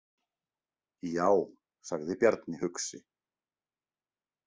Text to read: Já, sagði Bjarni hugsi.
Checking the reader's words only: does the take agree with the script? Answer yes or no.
yes